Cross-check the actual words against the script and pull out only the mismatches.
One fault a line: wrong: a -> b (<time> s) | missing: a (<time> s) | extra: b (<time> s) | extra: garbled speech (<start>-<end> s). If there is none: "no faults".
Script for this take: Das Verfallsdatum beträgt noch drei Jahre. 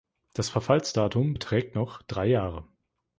no faults